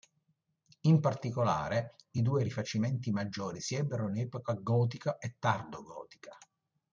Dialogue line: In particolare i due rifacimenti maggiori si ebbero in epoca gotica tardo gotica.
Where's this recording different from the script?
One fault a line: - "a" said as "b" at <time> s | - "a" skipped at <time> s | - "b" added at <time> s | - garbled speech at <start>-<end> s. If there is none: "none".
- "e" added at 5.2 s